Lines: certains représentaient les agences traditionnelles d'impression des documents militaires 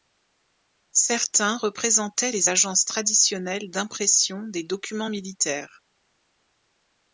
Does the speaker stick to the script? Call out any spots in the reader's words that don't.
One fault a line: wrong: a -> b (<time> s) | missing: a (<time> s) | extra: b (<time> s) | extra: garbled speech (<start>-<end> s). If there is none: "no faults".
no faults